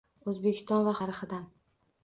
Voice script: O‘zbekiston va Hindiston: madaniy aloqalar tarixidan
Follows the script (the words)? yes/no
no